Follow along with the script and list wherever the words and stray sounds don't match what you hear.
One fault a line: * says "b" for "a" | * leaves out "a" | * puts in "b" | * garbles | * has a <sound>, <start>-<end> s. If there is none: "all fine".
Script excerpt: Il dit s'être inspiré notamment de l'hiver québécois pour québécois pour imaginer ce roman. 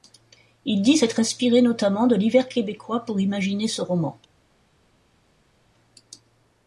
* leaves out "québécois pour"